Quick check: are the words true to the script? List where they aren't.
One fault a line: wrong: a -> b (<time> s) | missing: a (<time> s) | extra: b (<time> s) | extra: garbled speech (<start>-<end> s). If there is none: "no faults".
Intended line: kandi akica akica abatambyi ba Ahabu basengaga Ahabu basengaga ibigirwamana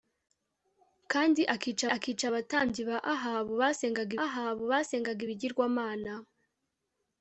no faults